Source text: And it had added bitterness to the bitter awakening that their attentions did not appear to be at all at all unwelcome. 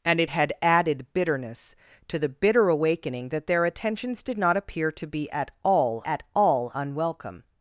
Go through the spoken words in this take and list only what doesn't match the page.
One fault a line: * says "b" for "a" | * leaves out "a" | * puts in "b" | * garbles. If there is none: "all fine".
all fine